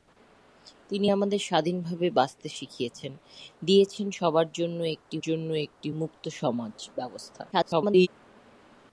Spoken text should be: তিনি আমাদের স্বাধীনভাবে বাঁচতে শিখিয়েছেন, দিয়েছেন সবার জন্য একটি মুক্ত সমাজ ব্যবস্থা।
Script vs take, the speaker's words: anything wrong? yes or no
yes